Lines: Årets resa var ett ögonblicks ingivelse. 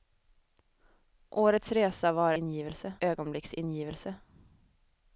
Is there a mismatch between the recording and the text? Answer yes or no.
yes